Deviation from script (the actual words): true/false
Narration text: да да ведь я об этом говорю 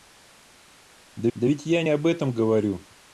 false